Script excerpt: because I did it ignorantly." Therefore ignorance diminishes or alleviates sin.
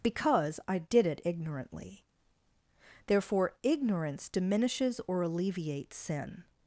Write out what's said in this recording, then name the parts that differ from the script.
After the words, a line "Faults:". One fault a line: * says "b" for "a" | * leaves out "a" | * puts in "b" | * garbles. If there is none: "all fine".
because I did it ignorantly." Therefore ignorance diminishes or alleviates sin.
Faults:
all fine